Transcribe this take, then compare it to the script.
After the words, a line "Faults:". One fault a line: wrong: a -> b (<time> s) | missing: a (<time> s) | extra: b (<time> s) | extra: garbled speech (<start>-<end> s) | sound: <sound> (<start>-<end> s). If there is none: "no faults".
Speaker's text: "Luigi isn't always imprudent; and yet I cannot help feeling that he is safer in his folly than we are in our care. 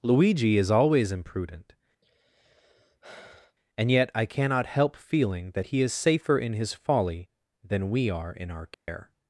"Luigi is always imprudent; and yet I cannot help feeling that he is safer in his folly than we are in our care.
Faults:
wrong: isn't -> is (0.6 s)
sound: sigh (2.0-3.6 s)
sound: dropout (8.7-8.9 s)